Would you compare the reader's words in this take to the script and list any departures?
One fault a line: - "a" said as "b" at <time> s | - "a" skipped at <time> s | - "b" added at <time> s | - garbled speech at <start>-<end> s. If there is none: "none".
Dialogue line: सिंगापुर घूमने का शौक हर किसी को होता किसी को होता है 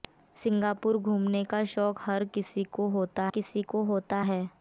none